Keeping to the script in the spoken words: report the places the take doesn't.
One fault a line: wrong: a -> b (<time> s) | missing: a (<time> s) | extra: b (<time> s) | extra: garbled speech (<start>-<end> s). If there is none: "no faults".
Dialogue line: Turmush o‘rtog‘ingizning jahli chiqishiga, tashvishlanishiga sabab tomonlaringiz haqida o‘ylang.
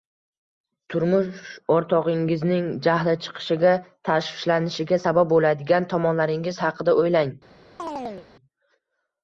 extra: bo‘ladigan (5.3 s)